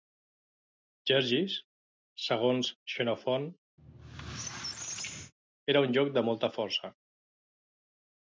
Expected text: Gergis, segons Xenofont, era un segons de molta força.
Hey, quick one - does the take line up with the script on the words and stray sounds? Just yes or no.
no